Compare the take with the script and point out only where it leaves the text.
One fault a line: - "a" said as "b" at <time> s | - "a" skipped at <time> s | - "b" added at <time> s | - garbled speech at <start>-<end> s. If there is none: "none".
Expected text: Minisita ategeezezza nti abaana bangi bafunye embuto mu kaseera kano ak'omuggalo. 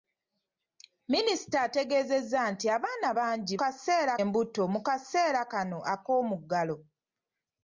- "bafunye" said as "kaseera" at 3.6 s